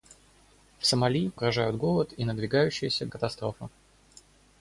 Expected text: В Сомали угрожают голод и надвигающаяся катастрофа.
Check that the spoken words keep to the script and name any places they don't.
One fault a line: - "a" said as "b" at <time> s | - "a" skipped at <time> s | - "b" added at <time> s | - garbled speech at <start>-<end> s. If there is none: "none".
none